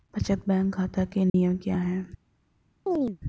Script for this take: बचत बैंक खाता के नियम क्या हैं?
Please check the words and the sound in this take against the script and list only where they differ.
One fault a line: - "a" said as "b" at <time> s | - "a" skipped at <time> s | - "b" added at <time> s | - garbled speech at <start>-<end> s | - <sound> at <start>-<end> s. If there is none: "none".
- dropout at 1.3-1.3 s
- chirp at 2.9-3.2 s